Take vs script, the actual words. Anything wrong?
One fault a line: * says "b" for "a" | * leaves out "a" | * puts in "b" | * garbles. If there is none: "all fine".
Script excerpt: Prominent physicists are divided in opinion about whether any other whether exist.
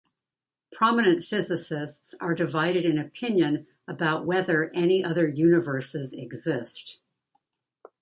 * says "universes" for "whether"